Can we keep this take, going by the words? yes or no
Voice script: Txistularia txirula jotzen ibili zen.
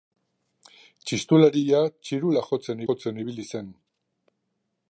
no